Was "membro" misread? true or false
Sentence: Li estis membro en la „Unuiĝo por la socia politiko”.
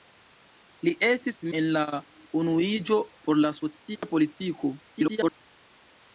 true